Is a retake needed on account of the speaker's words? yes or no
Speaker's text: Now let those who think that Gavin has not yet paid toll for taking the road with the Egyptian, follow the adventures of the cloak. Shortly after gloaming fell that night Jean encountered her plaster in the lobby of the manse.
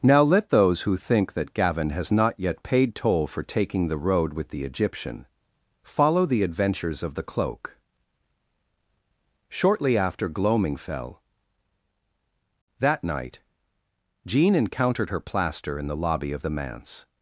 no